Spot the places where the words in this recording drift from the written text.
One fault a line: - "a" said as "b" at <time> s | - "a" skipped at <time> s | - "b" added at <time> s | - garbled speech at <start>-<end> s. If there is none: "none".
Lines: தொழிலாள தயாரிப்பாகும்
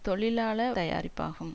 none